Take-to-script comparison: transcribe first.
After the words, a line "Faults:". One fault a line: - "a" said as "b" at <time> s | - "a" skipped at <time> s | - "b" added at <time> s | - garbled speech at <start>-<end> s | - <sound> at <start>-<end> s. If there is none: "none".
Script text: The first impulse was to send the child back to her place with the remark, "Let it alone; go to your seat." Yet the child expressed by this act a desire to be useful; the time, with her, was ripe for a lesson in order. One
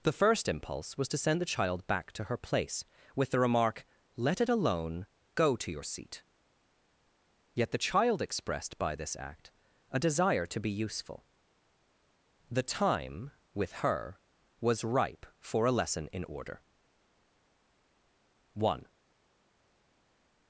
The first impulse was to send the child back to her place with the remark, "Let it alone; go to your seat." Yet the child expressed by this act a desire to be useful; the time, with her, was ripe for a lesson in order. One
Faults:
none